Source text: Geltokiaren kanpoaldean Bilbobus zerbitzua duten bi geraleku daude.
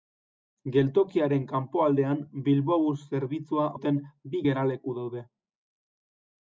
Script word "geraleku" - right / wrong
right